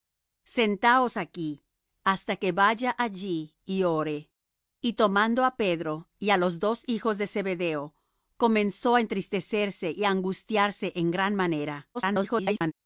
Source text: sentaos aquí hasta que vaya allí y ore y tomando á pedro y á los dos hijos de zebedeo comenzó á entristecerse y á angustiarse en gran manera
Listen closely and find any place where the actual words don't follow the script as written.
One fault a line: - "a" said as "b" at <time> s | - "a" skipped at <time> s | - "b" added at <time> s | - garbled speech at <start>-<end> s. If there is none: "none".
- garbled speech at 11.9-12.7 s